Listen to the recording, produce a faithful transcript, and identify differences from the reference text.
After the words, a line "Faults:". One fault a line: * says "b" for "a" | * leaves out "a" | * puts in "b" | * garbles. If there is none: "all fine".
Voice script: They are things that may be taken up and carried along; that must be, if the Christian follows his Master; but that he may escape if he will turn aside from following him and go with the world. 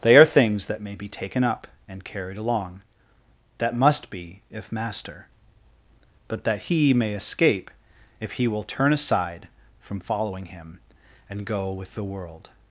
They are things that may be taken up and carried along; that must be, if Master; but that he may escape if he will turn aside from following him and go with the world.
Faults:
* leaves out "the Christian follows his"